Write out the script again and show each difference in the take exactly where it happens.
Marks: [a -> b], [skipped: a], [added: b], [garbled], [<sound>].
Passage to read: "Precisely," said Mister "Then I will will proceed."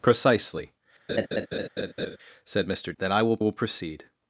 "Precisely," [laugh] said Mister "Then I will will proceed."